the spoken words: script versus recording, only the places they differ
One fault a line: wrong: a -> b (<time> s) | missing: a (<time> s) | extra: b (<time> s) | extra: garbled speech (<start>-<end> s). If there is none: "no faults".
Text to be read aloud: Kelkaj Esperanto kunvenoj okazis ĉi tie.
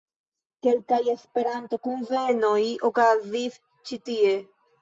no faults